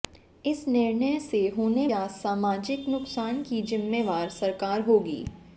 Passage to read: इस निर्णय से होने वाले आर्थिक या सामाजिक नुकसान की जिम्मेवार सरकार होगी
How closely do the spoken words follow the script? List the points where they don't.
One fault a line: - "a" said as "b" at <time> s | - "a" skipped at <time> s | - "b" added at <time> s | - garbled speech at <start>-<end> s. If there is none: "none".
- "वाले आर्थिक" skipped at 1.9 s